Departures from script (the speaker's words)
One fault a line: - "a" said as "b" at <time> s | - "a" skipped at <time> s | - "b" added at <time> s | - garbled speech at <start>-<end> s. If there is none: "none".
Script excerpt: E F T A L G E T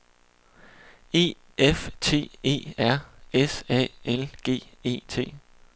- "E R S" added at 2.4 s